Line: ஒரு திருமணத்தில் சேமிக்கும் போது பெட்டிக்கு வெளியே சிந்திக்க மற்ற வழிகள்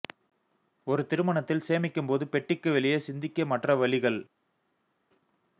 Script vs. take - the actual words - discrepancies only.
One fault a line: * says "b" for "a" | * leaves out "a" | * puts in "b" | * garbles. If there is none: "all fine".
all fine